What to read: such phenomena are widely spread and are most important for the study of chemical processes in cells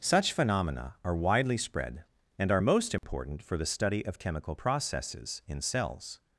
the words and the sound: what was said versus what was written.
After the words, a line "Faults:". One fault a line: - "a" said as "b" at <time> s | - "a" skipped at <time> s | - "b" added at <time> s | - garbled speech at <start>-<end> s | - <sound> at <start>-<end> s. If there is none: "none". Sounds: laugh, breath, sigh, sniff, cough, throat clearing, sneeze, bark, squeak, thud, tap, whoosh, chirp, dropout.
such phenomena are widely spread and are most important for the study of chemical processes in cells
Faults:
- dropout at 3.0-3.0 s